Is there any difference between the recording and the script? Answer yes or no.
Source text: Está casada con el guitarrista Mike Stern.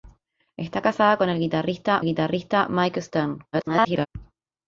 yes